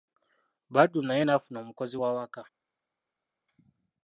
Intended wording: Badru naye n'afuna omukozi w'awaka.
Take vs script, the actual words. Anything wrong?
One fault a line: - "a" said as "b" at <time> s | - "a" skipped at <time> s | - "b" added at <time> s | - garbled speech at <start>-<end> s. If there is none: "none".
none